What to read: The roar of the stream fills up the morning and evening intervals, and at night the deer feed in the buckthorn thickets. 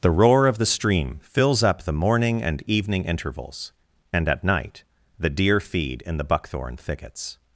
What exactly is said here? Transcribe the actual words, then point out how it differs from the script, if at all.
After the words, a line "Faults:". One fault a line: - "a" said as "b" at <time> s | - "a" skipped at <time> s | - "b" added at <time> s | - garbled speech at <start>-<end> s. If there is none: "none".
The roar of the stream fills up the morning and evening intervals, and at night the deer feed in the buckthorn thickets.
Faults:
none